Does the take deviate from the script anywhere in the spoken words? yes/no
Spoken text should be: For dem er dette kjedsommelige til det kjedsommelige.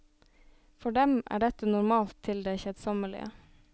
yes